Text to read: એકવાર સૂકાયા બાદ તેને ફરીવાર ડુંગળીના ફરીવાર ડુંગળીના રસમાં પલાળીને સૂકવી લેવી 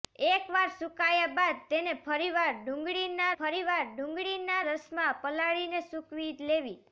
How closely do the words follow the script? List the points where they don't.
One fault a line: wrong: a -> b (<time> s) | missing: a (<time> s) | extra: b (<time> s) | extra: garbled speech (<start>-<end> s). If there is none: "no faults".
no faults